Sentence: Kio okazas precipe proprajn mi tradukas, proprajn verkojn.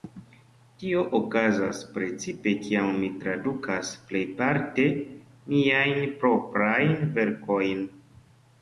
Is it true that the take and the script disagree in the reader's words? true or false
true